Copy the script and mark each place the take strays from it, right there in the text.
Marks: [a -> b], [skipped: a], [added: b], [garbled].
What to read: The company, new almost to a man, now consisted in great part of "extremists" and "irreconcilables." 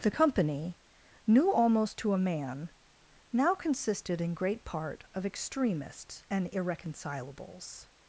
The company, new almost to a man, now consisted in great part of "extremists" and "irreconcilables."